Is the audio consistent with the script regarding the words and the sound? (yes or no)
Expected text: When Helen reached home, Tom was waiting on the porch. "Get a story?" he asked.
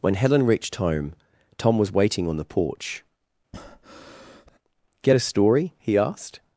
no